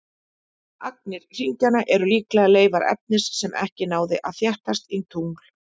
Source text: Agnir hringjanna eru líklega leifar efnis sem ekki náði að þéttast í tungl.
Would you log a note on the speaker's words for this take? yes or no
no